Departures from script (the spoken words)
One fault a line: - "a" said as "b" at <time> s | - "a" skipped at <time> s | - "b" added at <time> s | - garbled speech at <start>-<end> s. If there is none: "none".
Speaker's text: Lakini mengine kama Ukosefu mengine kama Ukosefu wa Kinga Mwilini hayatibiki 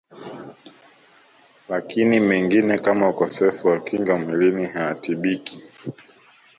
- "mengine kama Ukosefu" skipped at 3.7 s